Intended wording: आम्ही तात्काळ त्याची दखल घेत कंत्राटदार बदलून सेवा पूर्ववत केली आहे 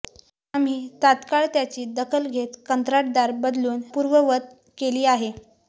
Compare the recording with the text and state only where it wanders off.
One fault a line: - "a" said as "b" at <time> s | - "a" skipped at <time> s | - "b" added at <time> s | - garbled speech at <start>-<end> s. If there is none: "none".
- "सेवा" skipped at 3.8 s